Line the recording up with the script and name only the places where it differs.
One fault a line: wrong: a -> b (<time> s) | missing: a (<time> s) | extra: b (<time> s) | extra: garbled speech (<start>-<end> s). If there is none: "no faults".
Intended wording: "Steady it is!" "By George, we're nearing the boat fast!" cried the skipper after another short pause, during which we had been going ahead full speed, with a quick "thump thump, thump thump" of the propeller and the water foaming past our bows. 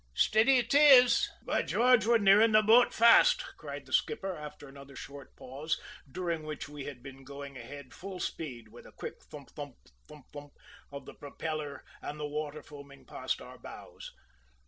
no faults